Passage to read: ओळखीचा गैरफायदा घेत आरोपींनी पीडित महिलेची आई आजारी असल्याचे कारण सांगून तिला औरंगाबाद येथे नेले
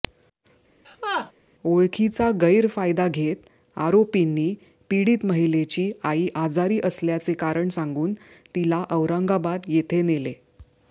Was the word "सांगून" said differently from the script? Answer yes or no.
no